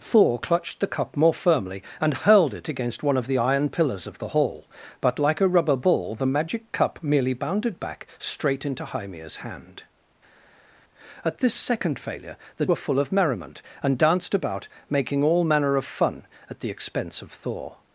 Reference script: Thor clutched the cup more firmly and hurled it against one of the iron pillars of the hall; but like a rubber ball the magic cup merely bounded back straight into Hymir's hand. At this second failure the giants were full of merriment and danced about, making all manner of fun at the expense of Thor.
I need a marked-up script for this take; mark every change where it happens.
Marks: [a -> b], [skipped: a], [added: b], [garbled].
Thor clutched the cup more firmly and hurled it against one of the iron pillars of the hall; but like a rubber ball the magic cup merely bounded back straight into Hymir's hand. At this second failure the [skipped: giants] were full of merriment and danced about, making all manner of fun at the expense of Thor.